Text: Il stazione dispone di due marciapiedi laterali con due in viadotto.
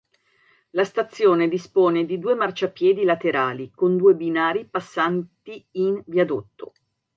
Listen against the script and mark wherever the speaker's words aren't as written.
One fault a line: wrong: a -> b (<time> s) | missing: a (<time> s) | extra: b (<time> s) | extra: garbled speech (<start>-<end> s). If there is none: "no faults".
wrong: Il -> La (0.7 s)
extra: binari passanti (4.2 s)